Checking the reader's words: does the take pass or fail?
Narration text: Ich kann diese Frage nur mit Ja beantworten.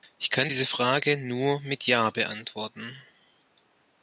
pass